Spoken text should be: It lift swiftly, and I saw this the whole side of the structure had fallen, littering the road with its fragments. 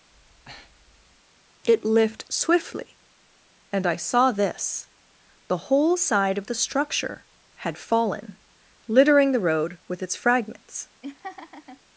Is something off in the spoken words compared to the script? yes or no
no